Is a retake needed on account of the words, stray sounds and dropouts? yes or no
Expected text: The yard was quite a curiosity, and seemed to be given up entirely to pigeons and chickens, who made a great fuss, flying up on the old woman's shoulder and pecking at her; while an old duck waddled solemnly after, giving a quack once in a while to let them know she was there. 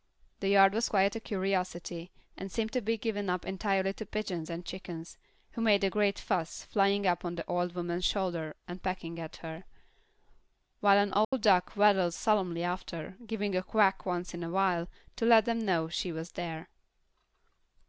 yes